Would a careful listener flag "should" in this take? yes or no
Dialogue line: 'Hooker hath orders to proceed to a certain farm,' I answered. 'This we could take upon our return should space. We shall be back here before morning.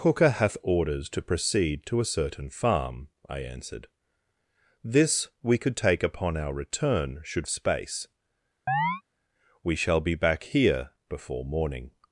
no